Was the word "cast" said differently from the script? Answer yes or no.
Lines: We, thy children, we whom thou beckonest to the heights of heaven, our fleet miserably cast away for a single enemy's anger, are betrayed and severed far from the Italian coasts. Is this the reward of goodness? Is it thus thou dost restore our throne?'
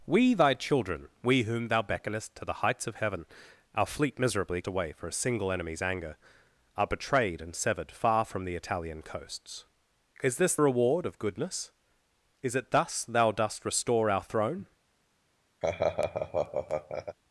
yes